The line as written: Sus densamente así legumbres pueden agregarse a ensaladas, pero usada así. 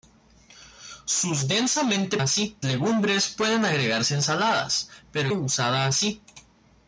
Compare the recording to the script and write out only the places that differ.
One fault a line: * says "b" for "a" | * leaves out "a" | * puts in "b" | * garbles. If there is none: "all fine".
all fine